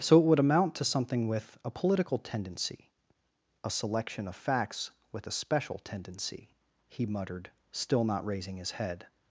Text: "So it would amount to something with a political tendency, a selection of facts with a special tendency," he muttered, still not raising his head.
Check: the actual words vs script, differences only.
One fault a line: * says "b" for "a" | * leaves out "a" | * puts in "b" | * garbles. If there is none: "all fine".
all fine